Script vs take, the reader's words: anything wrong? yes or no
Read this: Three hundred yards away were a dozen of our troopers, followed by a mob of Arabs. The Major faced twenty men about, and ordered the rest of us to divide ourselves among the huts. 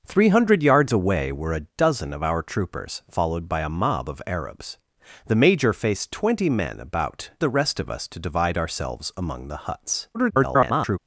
yes